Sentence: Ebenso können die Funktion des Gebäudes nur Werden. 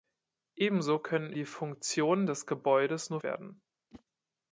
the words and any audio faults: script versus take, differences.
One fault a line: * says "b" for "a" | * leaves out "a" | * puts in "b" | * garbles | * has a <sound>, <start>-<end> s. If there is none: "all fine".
* has a whoosh, 3.9-4.0 s